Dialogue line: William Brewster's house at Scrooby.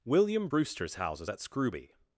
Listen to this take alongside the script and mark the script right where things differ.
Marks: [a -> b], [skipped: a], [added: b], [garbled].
William Brewster's [house -> houses] at Scrooby.